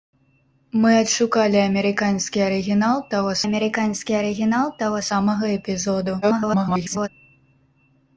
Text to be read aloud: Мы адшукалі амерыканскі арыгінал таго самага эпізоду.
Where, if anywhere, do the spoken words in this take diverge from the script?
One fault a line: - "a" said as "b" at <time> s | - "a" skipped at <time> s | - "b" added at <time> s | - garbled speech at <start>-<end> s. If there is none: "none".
- "амерыканскі арыгінал таго" added at 3.4 s
- garbled speech at 6.2-7.1 s